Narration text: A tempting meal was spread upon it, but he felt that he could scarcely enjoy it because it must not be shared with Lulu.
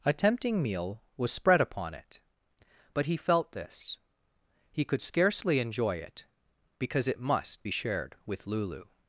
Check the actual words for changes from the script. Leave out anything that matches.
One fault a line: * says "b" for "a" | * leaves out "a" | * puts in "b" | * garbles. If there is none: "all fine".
* says "this" for "that"
* leaves out "not"